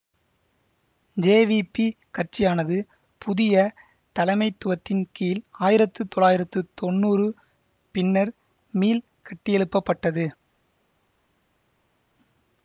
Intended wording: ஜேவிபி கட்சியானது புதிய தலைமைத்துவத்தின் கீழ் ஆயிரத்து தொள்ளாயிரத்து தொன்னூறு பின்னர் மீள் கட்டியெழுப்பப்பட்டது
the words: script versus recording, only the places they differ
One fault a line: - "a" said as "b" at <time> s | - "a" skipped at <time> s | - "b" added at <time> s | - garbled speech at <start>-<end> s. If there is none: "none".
none